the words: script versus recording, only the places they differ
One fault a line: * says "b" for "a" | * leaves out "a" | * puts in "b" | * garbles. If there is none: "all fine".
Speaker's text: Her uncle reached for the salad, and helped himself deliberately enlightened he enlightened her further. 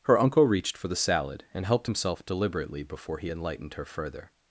* says "before" for "enlightened"